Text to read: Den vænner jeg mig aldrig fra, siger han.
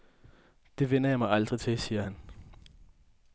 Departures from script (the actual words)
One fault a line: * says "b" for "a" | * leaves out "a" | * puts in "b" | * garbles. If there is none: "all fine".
* says "Det" for "Den"
* says "til" for "fra"